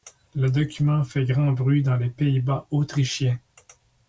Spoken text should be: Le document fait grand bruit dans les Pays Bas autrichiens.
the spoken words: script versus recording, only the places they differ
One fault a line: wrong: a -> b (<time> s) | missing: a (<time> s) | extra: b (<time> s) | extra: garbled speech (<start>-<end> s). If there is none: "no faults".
no faults